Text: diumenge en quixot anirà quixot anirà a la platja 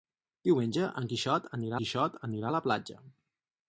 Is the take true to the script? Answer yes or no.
yes